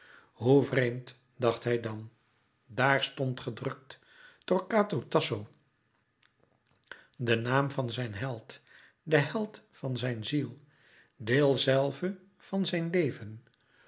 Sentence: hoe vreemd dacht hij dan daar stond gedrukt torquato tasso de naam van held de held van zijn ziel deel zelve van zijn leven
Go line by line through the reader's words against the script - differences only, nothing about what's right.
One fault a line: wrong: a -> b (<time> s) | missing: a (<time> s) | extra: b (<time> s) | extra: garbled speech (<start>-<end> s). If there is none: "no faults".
extra: zijn (7.9 s)